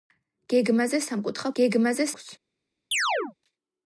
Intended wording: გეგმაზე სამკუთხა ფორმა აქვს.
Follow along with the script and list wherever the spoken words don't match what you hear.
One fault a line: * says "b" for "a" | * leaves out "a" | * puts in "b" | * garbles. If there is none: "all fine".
* says "გეგმაზე" for "ფორმა"